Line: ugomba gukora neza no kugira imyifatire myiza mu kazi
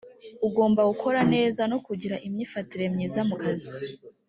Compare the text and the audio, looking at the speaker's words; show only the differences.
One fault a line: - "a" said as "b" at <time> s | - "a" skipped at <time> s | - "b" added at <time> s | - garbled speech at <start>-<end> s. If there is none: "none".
none